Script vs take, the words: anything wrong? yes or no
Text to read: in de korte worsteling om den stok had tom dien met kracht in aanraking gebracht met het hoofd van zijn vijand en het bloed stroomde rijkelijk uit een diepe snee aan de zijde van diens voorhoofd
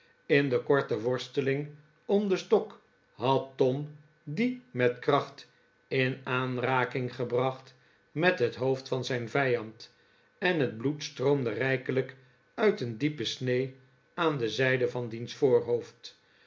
no